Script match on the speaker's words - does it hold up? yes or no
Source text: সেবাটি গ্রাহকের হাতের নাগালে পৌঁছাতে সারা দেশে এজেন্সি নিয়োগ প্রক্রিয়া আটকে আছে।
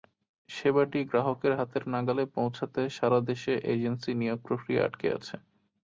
yes